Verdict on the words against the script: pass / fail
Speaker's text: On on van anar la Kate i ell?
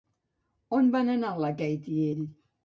fail